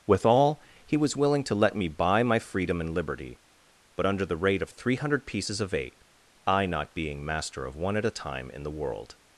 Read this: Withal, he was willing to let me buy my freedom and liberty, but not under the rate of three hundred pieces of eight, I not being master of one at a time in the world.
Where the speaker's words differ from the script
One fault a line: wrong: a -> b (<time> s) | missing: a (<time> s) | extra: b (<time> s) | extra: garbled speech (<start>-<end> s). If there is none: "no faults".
missing: not (4.1 s)